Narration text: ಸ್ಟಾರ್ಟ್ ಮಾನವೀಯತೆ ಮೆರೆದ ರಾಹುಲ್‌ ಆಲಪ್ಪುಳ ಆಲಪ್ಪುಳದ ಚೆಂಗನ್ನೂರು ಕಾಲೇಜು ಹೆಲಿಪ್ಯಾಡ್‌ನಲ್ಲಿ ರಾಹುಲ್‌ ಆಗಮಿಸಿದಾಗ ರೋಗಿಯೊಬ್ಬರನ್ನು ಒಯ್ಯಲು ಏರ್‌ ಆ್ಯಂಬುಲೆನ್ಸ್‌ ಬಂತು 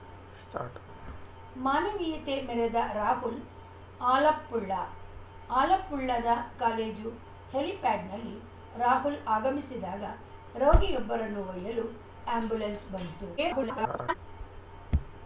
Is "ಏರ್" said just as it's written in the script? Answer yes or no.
no